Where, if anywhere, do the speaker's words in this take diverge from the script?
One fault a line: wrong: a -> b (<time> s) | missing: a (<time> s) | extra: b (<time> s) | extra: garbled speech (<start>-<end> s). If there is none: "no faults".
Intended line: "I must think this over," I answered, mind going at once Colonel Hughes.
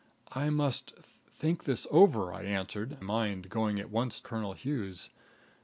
no faults